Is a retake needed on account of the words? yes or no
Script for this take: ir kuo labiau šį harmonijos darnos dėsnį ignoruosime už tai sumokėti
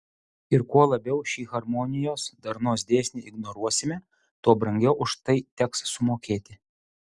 yes